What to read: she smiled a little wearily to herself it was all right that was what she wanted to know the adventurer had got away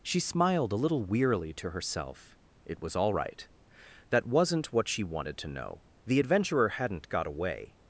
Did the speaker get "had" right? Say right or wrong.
wrong